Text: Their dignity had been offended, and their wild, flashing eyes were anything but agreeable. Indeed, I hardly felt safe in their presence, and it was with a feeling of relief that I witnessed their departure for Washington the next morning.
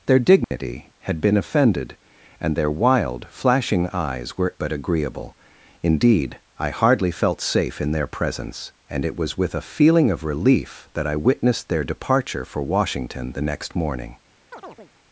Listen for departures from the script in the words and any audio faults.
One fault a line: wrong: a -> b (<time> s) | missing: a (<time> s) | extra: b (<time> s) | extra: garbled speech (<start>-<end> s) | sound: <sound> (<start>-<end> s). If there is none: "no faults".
sound: dropout (0.4-0.5 s)
missing: anything (4.5 s)
sound: chirp (14.5-14.9 s)